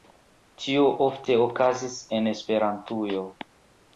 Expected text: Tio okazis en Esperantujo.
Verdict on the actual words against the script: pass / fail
fail